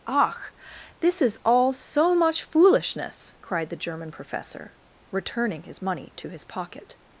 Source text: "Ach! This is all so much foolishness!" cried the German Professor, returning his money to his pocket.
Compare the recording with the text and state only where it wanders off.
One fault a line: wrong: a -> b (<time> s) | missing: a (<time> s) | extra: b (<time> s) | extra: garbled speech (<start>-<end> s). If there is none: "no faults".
no faults